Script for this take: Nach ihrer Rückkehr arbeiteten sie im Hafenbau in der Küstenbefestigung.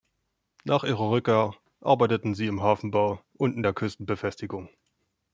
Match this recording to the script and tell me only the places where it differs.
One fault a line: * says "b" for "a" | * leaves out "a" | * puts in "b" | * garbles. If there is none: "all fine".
* puts in "und"